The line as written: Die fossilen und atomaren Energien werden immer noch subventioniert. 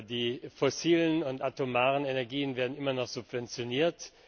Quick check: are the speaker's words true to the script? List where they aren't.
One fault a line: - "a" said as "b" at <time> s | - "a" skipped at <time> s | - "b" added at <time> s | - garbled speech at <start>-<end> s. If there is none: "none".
none